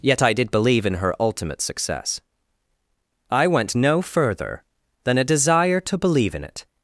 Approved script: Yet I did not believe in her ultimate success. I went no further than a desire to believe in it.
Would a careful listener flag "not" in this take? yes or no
yes